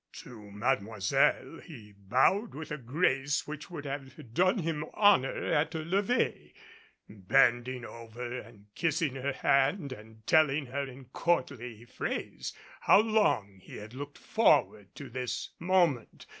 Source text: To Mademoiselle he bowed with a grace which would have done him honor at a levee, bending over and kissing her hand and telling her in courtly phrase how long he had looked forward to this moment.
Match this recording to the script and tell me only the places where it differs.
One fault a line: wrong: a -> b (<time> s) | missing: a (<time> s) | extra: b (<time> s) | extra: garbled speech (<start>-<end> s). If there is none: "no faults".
no faults